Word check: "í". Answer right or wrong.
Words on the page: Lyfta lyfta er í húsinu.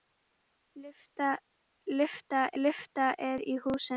right